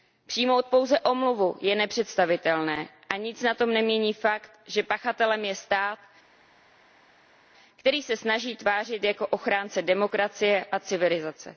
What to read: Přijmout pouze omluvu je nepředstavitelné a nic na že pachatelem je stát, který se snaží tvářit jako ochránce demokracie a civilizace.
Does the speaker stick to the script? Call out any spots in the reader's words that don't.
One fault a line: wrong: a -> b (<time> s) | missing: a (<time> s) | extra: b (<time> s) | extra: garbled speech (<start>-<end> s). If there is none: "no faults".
extra: tom nemění fakt (3.5 s)